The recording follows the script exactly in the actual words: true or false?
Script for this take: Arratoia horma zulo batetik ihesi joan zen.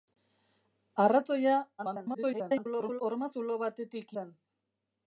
false